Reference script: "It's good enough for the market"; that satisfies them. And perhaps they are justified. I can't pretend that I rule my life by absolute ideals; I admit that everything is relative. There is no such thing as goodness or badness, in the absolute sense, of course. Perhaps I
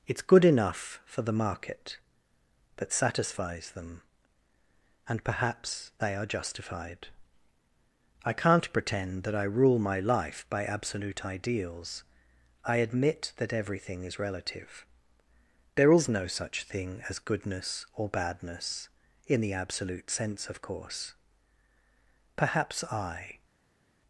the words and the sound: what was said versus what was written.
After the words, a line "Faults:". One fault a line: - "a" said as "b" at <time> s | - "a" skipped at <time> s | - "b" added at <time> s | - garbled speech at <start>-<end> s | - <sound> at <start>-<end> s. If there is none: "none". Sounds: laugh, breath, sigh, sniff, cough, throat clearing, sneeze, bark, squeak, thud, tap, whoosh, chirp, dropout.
"It's good enough for the market"; that satisfies them. And perhaps they are justified. I can't pretend that I rule my life by absolute ideals; I admit that everything is relative. There is no such thing as goodness or badness, in the absolute sense, of course. Perhaps I
Faults:
none